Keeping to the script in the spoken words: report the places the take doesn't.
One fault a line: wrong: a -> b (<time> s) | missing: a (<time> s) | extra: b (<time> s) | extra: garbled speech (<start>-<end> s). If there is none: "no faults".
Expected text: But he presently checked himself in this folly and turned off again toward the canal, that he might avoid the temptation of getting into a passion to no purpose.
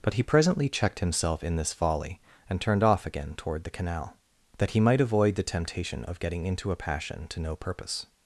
no faults